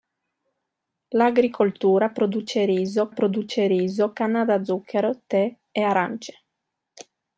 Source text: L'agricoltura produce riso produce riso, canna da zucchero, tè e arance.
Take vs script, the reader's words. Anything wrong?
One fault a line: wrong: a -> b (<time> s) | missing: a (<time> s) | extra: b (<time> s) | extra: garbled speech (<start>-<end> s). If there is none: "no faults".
no faults